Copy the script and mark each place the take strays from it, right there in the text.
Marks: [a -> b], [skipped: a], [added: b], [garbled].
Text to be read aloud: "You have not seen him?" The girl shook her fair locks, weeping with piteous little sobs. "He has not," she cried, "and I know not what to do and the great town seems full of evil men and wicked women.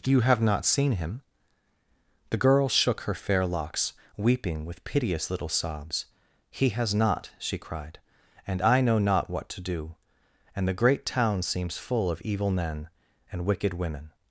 "You have not seen him?" The girl shook her fair locks, weeping with piteous little sobs. "He has not," she cried, "and I know not what to do and the great town seems full of evil men and wicked women.